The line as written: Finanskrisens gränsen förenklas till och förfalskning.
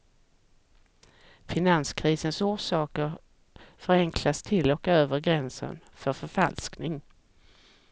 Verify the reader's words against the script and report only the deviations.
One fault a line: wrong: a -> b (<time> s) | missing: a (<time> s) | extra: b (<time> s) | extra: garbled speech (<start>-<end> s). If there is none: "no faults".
wrong: gränsen -> orsaker (2.4 s)
extra: över gränsen för (4.9 s)